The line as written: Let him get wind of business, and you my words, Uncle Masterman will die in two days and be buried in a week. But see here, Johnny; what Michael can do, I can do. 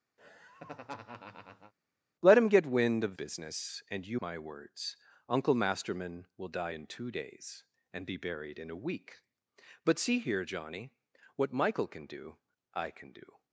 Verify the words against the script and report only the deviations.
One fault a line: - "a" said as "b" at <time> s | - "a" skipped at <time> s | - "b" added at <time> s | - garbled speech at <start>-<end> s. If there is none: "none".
none